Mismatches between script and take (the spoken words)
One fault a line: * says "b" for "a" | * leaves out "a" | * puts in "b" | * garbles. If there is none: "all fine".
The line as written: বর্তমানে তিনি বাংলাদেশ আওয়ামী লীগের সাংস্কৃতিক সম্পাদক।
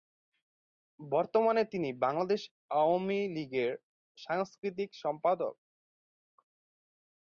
all fine